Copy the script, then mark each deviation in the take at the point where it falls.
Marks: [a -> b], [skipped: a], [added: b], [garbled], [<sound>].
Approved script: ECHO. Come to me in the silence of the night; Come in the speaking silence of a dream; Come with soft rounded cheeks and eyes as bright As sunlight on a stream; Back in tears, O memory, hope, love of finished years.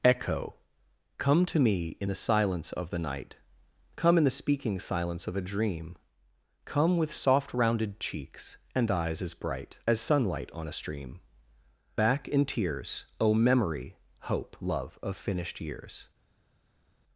ECHO. Come to me in the silence of the night; Come in the speaking silence of a dream; Come with soft rounded cheeks and eyes as bright As sunlight on a stream; Back in tears, O memory, hope, love of finished years.